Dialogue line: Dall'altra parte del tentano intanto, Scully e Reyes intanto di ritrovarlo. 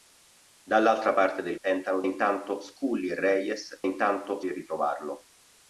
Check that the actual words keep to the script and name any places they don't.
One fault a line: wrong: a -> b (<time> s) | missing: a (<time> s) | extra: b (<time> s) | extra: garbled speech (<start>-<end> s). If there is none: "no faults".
no faults